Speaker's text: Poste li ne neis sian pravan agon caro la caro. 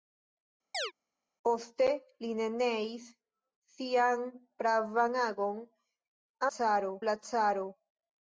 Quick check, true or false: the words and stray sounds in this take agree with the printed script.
false